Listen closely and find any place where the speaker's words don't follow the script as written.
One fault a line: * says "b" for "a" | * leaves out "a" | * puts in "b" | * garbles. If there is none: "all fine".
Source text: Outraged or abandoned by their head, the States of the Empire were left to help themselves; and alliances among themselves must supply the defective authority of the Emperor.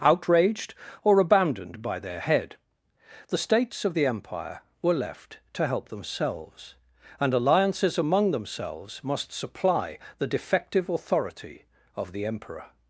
all fine